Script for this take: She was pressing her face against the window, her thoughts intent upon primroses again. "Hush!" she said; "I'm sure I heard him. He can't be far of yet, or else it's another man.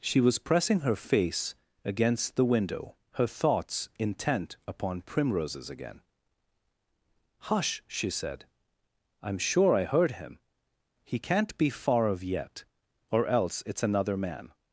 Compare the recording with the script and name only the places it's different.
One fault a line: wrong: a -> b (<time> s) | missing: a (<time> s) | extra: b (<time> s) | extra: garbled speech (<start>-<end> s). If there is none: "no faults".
no faults